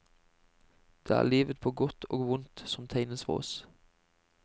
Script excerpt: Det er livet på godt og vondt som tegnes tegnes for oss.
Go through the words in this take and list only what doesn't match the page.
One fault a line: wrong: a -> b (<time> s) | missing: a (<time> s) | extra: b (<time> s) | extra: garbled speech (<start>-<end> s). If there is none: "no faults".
missing: tegnes (3.2 s)